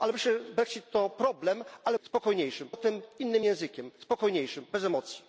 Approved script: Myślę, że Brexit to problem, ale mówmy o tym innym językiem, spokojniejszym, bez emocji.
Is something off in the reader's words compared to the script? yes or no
yes